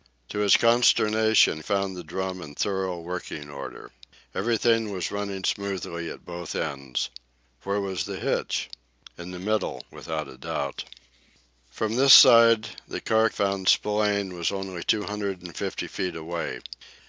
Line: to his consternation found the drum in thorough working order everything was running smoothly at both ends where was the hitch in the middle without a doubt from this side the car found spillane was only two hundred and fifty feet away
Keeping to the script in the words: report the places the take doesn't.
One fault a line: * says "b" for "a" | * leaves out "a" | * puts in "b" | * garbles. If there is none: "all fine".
all fine